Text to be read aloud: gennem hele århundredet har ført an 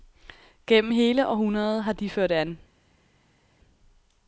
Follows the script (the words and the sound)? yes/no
no